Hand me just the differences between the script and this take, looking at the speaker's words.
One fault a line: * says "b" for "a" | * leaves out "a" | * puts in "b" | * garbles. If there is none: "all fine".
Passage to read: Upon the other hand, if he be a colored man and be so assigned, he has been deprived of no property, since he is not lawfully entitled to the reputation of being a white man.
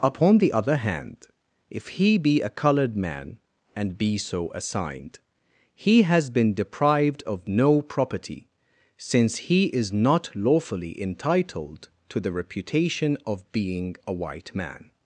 all fine